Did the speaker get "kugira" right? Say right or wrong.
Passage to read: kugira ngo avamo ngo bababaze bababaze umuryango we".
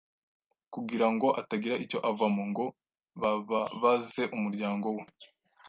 right